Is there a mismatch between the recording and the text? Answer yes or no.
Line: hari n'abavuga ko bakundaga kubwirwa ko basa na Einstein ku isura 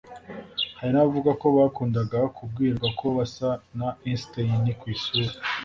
no